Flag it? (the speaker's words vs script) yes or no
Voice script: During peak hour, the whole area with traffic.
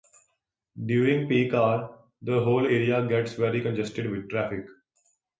yes